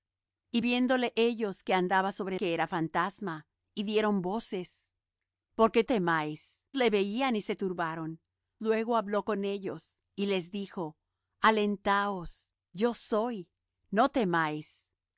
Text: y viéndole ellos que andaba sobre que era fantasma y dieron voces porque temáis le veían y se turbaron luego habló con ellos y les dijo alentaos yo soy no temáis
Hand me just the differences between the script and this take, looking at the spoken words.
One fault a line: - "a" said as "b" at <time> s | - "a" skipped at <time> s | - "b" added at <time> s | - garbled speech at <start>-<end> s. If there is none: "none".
none